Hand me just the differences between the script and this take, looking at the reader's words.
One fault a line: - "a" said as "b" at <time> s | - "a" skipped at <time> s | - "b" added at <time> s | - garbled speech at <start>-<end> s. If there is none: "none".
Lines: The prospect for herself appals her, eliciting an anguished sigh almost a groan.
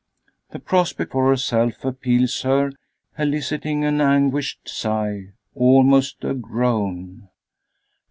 none